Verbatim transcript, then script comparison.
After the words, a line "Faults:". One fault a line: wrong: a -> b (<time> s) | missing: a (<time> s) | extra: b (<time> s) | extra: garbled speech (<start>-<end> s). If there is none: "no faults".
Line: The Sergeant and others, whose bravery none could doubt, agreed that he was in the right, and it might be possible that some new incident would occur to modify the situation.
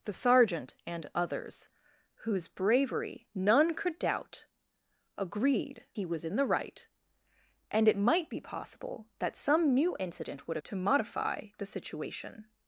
The Sergeant and others, whose bravery none could doubt, agreed he was in the right, and it might be possible that some new incident would to modify the situation.
Faults:
missing: that (5.8 s)
missing: occur (10.6 s)